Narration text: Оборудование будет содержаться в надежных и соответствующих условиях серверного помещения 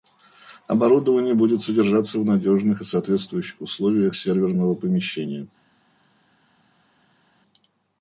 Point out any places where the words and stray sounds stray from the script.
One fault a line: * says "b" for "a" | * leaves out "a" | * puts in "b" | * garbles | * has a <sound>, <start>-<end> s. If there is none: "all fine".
all fine